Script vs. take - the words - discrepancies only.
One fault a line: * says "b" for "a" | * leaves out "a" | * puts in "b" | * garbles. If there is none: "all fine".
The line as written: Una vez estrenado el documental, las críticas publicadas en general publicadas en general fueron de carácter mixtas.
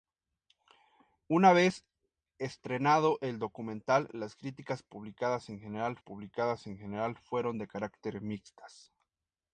all fine